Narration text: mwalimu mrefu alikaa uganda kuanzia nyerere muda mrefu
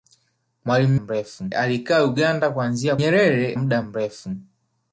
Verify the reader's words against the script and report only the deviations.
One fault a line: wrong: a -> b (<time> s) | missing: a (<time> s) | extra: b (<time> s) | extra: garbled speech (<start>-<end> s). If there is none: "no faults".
no faults